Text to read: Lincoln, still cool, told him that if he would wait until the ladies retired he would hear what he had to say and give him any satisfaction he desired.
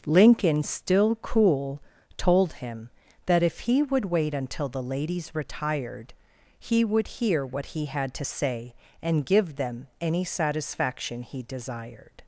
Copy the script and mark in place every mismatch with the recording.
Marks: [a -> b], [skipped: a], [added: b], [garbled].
Lincoln, still cool, told him that if he would wait until the ladies retired he would hear what he had to say and give [him -> them] any satisfaction he desired.